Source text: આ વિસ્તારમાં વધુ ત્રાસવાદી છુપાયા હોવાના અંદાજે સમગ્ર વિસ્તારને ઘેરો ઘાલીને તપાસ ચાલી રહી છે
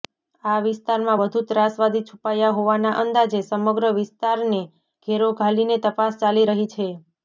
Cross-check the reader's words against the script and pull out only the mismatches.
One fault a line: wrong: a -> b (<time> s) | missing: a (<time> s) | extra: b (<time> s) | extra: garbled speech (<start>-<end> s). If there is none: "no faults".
no faults